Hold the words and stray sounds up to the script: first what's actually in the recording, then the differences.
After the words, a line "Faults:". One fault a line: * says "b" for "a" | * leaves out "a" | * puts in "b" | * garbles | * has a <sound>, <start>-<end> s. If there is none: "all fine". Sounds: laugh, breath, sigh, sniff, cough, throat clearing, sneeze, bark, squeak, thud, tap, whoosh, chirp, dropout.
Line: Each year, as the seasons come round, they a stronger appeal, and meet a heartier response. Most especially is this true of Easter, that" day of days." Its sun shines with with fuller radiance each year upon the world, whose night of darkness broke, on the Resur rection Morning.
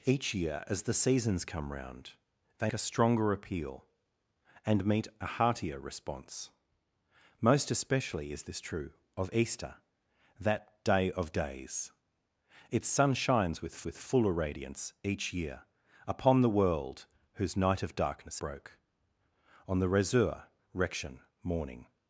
Each year, as the seasons come round, they a stronger appeal, and meet a heartier response. Most especially is this true of Easter, that" day of days." Its sun shines with with fuller radiance each year upon the world, whose night of darkness broke, on the Resur rection Morning.
Faults:
all fine